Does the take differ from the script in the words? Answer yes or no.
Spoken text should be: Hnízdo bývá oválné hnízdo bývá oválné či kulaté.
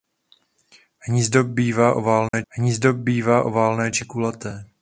no